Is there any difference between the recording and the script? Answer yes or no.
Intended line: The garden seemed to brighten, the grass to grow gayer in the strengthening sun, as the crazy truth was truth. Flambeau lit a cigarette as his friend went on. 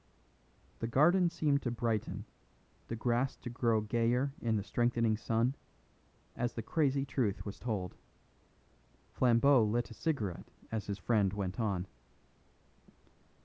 yes